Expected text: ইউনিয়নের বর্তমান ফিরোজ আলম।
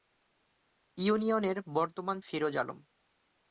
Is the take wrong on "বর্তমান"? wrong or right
right